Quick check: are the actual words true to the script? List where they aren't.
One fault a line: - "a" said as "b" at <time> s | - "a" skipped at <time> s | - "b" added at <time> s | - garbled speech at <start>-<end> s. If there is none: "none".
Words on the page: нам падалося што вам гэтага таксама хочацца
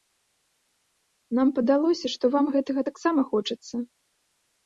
none